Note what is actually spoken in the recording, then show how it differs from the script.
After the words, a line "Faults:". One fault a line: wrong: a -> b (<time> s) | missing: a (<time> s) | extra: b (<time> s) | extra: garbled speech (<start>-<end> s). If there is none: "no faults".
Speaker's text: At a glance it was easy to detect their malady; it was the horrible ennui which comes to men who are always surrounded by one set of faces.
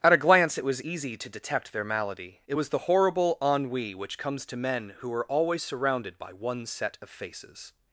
At a glance it was easy to detect their malady; it was the horrible ennui which comes to men who are always surrounded by one set of faces.
Faults:
no faults